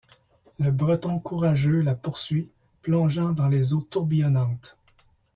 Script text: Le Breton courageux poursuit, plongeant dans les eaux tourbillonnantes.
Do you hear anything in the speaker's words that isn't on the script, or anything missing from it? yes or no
yes